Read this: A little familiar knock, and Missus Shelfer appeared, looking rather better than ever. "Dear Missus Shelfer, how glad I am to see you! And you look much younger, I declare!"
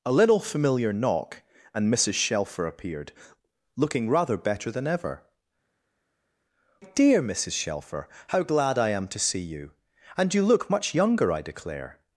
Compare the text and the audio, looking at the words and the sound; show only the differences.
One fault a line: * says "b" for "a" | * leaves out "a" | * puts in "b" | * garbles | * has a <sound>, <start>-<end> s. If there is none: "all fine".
all fine